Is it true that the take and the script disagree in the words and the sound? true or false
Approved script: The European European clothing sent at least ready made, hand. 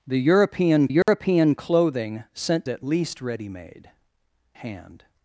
true